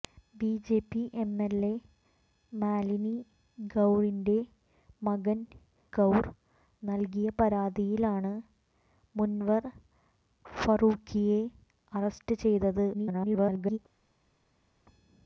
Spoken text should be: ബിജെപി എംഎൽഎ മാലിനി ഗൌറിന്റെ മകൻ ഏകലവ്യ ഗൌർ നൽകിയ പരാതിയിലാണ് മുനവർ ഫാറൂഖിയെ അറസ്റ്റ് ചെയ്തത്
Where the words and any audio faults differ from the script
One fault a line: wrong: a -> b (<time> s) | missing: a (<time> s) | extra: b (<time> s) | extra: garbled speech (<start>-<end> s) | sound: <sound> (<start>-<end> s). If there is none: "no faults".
missing: ഏകലവ്യ (5.4 s)
extra: garbled speech (12.9-13.8 s)